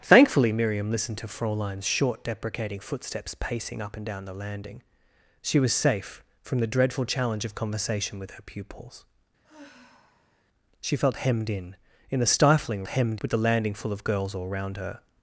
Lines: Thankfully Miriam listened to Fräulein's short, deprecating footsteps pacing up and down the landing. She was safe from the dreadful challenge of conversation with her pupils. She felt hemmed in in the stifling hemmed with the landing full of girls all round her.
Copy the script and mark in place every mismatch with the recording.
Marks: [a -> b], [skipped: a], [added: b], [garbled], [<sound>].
Thankfully Miriam listened to Fräulein's short, deprecating footsteps pacing up and down the landing. She was safe from the dreadful challenge of conversation with her pupils. [sigh] She felt hemmed in in the stifling hemmed with the landing full of girls all round her.